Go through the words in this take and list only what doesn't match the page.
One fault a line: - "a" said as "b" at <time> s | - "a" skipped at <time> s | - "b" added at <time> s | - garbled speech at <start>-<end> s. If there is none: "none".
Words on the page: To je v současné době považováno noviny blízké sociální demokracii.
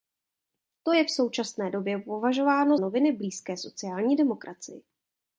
none